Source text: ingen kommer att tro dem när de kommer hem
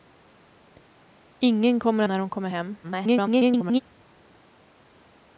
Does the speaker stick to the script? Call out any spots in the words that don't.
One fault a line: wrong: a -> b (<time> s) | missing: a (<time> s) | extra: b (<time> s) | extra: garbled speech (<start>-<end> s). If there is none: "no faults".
missing: att tro dem (2.0 s)
extra: garbled speech (2.8-3.8 s)